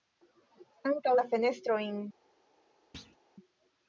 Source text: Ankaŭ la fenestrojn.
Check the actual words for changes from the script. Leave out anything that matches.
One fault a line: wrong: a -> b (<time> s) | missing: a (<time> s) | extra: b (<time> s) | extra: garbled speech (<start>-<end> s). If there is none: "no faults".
no faults